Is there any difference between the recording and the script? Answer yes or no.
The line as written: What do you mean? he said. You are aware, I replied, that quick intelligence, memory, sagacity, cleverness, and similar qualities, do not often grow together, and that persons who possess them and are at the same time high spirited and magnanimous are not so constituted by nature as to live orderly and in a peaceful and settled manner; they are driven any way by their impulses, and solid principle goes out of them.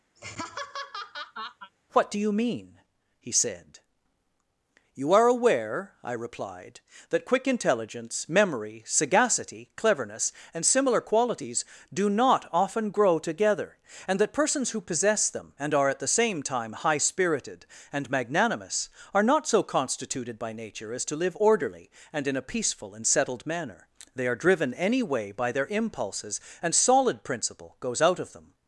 no